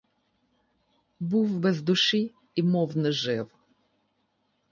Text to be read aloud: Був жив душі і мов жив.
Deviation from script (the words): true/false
true